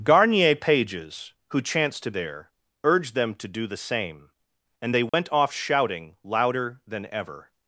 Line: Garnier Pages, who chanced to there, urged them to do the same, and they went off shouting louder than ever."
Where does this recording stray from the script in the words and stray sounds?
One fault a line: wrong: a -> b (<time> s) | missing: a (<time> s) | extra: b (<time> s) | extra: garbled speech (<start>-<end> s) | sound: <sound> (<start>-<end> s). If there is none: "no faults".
sound: dropout (5.1-5.1 s)